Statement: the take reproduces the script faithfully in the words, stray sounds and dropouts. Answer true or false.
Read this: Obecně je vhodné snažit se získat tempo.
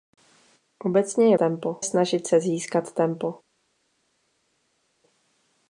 false